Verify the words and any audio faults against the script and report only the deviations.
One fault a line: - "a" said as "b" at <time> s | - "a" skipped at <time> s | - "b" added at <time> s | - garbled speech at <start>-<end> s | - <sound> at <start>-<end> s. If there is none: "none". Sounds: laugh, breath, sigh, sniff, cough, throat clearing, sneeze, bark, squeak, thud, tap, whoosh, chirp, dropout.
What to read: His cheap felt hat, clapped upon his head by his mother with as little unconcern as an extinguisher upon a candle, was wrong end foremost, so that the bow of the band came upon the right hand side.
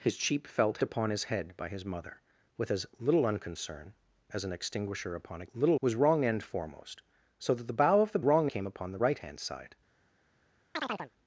- "hat clapped" skipped at 0.8 s
- "candle" said as "little" at 5.5 s
- "band" said as "wrong" at 8.2 s
- chirp at 10.7-11.1 s